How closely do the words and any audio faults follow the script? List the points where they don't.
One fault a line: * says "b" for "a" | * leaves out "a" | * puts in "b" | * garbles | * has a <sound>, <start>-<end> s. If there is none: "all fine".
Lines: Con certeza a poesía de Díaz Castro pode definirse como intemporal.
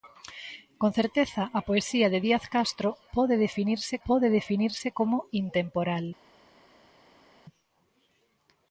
* puts in "pode definirse"